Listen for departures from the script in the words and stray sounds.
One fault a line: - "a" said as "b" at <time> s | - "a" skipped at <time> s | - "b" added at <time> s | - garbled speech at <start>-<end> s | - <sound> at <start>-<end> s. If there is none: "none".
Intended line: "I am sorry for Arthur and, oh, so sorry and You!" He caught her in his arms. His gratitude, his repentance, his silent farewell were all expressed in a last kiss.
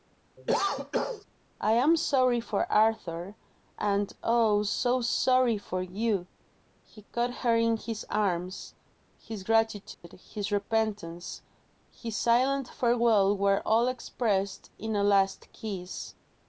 - cough at 0.4-1.2 s
- "and" said as "for" at 5.6 s
- dropout at 9.9-10.0 s